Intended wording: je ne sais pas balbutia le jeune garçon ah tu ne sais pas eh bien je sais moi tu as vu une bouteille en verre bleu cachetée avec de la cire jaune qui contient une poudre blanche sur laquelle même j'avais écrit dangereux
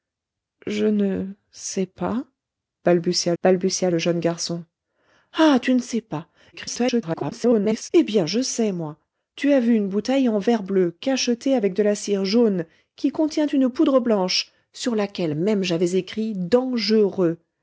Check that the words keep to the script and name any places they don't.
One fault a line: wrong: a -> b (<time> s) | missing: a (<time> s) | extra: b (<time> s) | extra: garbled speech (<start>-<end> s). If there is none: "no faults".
extra: balbutia (3.4 s)
extra: garbled speech (6.5-7.9 s)